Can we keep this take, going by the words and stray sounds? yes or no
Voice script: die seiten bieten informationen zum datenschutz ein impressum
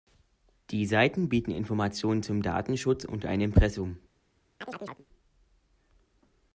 no